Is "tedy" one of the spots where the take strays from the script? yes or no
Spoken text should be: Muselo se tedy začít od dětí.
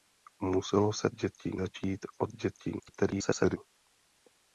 yes